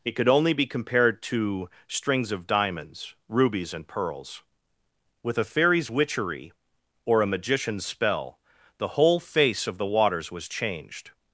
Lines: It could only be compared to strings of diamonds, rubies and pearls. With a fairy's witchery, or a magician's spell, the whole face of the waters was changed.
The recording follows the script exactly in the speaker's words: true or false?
true